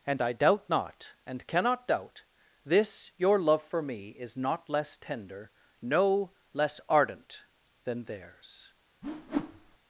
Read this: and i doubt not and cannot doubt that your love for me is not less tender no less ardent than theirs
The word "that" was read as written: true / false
false